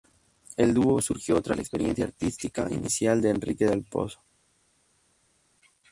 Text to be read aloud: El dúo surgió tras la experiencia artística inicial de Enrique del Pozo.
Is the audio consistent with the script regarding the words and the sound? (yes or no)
yes